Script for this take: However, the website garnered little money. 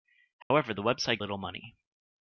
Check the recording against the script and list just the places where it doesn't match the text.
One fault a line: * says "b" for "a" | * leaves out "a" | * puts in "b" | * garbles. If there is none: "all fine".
* leaves out "garnered"